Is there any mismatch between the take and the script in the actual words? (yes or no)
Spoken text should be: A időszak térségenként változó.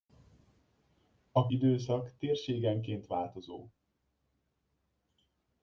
no